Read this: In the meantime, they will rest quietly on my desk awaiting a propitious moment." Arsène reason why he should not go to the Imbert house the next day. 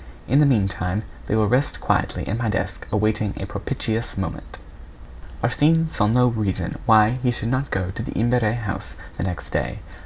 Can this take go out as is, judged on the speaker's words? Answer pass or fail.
fail